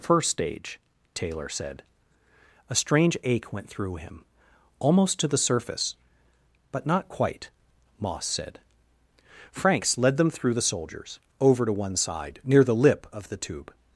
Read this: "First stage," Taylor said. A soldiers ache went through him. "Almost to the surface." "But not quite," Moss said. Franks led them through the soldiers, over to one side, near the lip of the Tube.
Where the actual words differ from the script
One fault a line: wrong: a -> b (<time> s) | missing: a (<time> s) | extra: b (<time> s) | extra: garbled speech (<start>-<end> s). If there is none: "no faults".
wrong: soldiers -> strange (2.8 s)